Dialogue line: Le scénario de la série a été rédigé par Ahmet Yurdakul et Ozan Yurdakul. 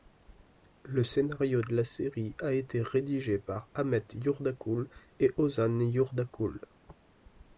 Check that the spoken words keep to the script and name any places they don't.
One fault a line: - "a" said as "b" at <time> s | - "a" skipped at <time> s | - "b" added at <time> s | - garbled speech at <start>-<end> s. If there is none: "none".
none